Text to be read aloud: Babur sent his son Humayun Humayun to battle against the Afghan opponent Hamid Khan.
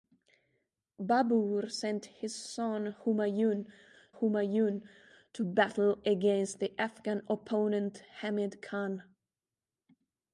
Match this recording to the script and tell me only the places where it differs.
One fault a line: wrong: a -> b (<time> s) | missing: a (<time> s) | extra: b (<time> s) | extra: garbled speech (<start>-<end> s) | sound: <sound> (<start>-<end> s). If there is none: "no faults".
no faults